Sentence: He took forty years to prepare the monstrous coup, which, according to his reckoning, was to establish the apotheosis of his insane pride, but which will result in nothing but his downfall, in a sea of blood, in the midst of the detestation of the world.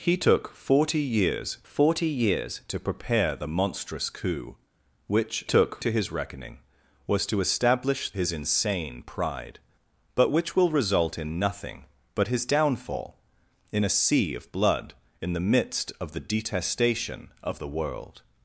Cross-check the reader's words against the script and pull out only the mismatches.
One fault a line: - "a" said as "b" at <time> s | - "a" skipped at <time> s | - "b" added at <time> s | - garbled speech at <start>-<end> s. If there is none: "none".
- "forty years" added at 1.7 s
- "according" said as "took" at 5.4 s
- "the apotheosis of" skipped at 8.1 s